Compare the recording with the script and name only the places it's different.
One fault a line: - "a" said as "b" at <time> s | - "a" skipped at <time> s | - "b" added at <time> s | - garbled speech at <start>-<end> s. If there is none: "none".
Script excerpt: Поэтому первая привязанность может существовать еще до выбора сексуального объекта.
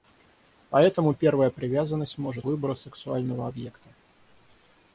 - "существовать еще до" skipped at 2.5 s